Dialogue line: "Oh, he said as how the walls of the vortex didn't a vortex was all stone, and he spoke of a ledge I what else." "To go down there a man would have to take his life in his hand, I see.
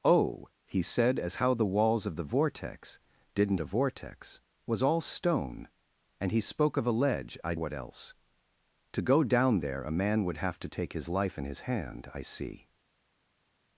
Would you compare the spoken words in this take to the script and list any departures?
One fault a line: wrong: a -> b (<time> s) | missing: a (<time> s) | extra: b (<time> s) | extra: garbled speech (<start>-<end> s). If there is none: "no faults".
no faults